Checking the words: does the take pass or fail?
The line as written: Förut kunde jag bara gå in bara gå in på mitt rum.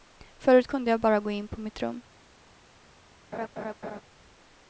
fail